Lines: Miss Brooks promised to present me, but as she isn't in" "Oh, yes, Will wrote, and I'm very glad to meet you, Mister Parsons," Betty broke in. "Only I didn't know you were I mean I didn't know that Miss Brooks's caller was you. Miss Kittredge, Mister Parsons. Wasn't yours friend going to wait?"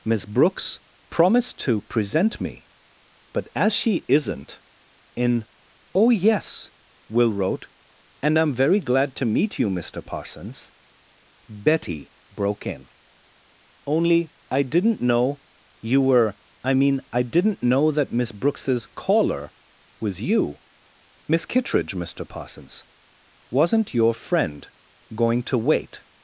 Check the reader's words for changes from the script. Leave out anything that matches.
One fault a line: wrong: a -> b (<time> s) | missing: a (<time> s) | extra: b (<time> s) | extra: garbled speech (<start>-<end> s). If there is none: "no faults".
wrong: yours -> your (23.9 s)